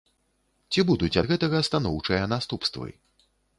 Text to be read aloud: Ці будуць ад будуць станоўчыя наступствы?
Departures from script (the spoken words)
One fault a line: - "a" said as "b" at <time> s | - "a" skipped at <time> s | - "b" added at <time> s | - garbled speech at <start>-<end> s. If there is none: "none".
- "будуць" said as "гэтага" at 1.3 s